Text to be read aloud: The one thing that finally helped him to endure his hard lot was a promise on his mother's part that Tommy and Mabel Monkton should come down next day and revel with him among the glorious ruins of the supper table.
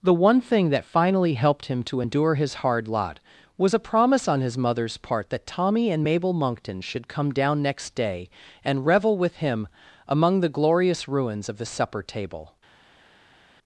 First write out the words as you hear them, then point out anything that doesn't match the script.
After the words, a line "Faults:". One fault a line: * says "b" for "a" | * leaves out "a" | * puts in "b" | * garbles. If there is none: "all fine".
The one thing that finally helped him to endure his hard lot was a promise on his mother's part that Tommy and Mabel Monkton should come down next day and revel with him among the glorious ruins of the supper table.
Faults:
all fine